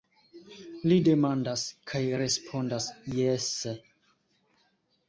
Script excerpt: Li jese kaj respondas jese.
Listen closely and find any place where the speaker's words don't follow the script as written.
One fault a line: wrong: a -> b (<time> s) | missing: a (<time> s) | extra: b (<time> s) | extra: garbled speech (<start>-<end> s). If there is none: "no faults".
wrong: jese -> demandas (1.1 s)